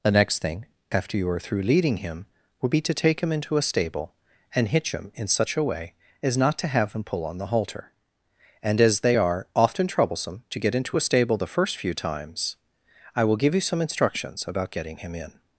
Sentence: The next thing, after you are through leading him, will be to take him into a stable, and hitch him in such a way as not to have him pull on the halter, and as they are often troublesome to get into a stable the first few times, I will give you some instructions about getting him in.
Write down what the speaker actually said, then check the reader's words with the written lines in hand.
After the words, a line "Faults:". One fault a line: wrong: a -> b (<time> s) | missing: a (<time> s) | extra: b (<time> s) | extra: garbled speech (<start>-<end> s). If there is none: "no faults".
The next thing, after you are through leading him, would be to take him into a stable, and hitch him in such a way as not to have him pull on the halter, and as they are often troublesome to get into a stable the first few times, I will give you some instructions about getting him in.
Faults:
wrong: will -> would (2.6 s)